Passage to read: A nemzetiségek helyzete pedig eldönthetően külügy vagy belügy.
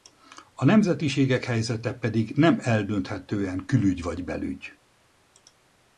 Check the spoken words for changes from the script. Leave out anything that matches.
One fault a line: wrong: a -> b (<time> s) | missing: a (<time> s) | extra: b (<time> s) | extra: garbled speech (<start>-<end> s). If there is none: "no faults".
extra: nem (2.3 s)